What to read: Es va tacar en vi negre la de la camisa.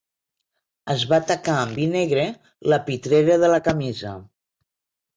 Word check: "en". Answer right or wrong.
wrong